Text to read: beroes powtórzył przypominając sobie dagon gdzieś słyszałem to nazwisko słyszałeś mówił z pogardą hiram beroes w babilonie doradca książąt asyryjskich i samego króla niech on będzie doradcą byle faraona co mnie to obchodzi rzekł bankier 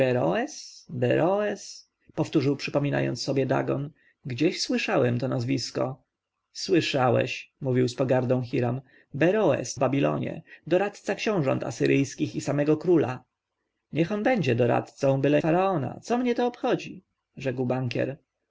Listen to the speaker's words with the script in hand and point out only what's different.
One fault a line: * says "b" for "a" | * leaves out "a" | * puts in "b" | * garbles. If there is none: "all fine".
all fine